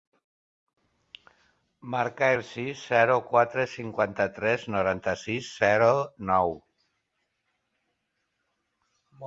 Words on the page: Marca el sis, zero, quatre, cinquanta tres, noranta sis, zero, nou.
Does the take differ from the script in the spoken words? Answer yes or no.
no